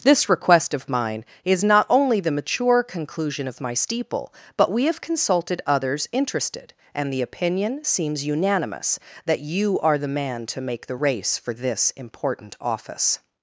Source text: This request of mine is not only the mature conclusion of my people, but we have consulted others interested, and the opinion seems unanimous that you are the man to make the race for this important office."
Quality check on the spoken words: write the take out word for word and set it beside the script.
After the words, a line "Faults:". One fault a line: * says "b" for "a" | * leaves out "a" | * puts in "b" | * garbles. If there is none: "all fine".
This request of mine is not only the mature conclusion of my steeple, but we have consulted others interested, and the opinion seems unanimous that you are the man to make the race for this important office."
Faults:
* says "steeple" for "people"